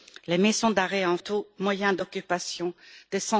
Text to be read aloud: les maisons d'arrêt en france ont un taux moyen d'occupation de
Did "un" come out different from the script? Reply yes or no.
yes